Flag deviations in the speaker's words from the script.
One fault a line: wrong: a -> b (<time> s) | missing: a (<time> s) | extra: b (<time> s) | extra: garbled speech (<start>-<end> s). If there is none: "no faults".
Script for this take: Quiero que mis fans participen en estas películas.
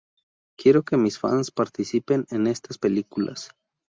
no faults